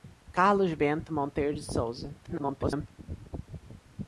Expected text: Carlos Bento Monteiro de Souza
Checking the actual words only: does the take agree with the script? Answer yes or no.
no